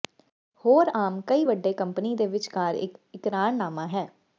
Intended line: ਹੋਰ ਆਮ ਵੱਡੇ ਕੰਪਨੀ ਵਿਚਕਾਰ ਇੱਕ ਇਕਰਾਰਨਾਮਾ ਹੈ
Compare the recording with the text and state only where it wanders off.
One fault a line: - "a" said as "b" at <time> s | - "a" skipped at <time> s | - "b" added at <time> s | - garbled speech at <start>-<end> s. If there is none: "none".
- "ਕਈ" added at 1.3 s
- "ਦੇ" added at 2.1 s